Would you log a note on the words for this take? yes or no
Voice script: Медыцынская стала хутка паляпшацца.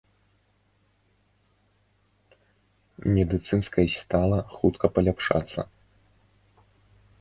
no